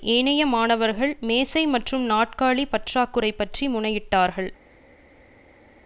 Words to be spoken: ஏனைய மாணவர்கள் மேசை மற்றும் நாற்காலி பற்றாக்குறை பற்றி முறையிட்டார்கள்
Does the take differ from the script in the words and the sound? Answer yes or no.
no